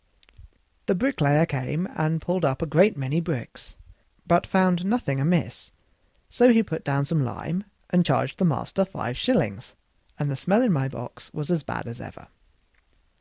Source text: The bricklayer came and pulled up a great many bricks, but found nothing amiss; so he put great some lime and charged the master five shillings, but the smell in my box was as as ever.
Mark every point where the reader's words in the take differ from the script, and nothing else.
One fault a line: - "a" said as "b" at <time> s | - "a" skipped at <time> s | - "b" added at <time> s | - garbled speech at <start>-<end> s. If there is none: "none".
- "great" said as "down" at 6.8 s
- "but" said as "and" at 10.2 s
- "bad" added at 11.6 s